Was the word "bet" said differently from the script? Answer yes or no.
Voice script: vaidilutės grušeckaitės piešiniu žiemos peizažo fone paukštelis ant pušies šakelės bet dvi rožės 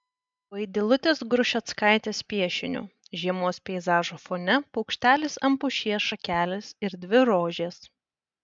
yes